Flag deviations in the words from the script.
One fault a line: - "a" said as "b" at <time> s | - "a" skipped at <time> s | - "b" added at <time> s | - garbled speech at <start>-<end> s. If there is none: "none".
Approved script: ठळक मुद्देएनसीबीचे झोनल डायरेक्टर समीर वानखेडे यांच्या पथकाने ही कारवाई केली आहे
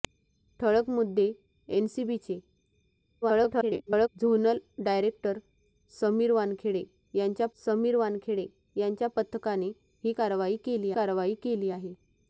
- garbled speech at 3.2-4.1 s
- "समीर वानखेडे यांच्या" added at 7.6 s
- "कारवाई केली" added at 10.9 s